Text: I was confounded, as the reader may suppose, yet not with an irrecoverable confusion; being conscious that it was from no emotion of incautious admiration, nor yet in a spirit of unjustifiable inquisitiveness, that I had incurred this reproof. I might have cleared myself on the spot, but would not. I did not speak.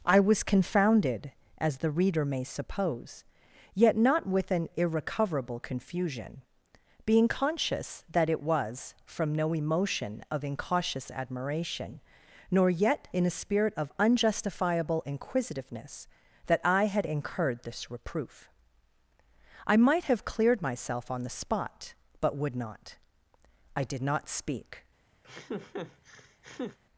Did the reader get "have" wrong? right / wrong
right